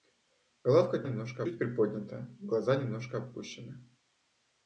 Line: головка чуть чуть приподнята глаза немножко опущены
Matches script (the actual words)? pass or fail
fail